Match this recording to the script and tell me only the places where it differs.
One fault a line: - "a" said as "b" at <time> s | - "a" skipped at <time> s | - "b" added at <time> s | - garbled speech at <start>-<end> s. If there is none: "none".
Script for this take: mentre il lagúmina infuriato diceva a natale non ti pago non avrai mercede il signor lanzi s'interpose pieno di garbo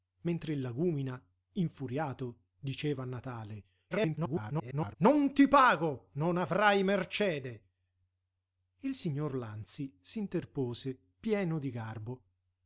- garbled speech at 3.9-5.0 s